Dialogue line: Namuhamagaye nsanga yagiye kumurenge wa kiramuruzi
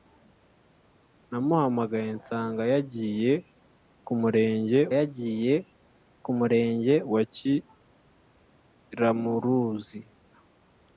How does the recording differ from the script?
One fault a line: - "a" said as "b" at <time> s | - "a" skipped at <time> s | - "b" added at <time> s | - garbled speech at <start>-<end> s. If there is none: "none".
- "yagiye kumurenge" added at 5.0 s